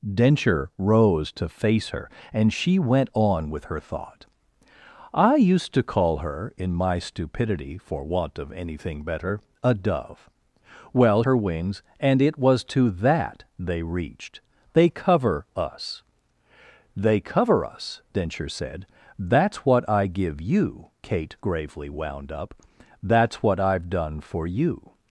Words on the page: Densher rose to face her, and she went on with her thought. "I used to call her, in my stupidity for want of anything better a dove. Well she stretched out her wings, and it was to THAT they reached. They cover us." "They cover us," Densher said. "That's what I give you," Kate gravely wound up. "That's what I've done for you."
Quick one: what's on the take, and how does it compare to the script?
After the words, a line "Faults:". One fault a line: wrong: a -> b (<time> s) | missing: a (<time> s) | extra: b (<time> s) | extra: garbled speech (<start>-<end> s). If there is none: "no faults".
Densher rose to face her, and she went on with her thought. "I used to call her, in my stupidity for want of anything better a dove. Well her wings, and it was to THAT they reached. They cover us." "They cover us," Densher said. "That's what I give you," Kate gravely wound up. "That's what I've done for you."
Faults:
missing: she stretched out (11.2 s)